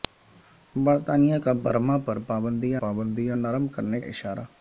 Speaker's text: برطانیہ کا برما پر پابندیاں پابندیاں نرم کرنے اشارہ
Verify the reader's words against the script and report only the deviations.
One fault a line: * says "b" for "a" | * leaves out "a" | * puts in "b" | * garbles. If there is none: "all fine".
all fine